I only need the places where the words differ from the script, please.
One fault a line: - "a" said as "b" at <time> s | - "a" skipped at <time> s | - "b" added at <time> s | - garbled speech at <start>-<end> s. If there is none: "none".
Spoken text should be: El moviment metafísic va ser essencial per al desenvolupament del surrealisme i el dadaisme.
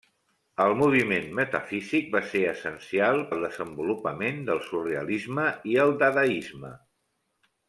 - "per" skipped at 3.2 s